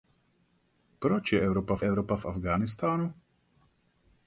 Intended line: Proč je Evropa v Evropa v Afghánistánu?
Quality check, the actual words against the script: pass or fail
pass